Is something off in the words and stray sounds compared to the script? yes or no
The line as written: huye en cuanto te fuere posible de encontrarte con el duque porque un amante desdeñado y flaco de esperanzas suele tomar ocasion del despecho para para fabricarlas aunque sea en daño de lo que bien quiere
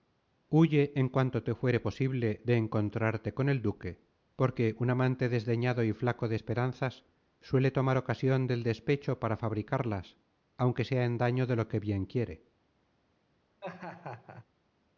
yes